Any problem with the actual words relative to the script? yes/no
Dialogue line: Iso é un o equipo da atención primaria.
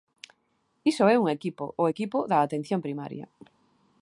yes